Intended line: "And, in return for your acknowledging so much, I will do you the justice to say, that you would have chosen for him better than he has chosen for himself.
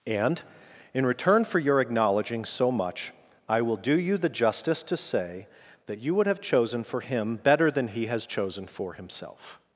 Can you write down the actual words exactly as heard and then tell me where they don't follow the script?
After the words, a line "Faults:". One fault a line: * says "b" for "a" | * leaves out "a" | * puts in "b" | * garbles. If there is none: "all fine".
"And, in return for your acknowledging so much, I will do you the justice to say, that you would have chosen for him better than he has chosen for himself.
Faults:
all fine